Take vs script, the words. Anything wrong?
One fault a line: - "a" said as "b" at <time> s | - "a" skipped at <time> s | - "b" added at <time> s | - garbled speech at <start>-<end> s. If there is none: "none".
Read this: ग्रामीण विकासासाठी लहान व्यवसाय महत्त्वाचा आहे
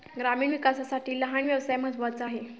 none